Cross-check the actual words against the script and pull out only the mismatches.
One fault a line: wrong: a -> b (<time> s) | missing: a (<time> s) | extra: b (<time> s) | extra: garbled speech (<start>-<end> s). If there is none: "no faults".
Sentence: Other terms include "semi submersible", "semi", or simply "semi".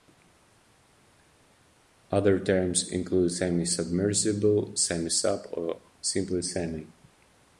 extra: sub (5.1 s)